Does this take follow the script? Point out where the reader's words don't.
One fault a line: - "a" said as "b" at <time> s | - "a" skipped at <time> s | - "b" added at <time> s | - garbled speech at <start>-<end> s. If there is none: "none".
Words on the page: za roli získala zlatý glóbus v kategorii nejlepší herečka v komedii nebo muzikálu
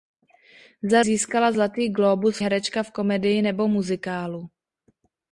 - "roli" skipped at 1.0 s
- "v kategorii nejlepší" skipped at 2.4 s